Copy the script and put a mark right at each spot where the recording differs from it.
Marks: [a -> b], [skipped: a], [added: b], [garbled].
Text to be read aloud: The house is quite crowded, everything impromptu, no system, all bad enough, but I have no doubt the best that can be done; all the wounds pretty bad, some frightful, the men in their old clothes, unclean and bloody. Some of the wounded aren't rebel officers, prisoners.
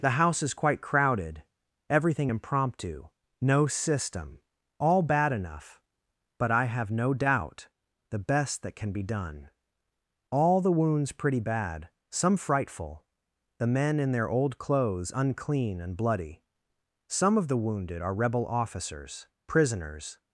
The house is quite crowded, everything impromptu, no system, all bad enough, but I have no doubt the best that can be done; all the wounds pretty bad, some frightful, the men in their old clothes, unclean and bloody. Some of the wounded [aren't -> are] rebel officers, prisoners.